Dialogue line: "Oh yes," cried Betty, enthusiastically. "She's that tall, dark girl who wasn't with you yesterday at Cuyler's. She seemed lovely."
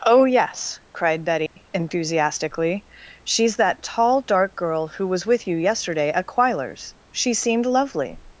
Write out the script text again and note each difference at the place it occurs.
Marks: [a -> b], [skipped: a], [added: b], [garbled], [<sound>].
"Oh yes," cried Betty, [dropout] enthusiastically. "She's that tall, dark girl who [wasn't -> was] with you yesterday at Cuyler's. She seemed lovely."